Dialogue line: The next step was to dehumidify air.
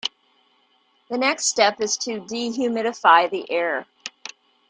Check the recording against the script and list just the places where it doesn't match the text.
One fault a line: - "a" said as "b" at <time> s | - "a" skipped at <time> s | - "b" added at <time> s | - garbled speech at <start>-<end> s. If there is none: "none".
- "was" said as "is" at 1.8 s
- "the" added at 3.3 s